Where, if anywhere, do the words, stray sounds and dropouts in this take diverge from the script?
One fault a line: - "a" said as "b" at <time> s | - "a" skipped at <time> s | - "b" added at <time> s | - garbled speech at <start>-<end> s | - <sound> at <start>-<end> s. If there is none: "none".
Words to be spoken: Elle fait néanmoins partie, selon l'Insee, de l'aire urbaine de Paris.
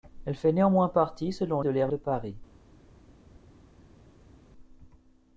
- "l'Insee" skipped at 1.6 s
- "urbaine" skipped at 1.9 s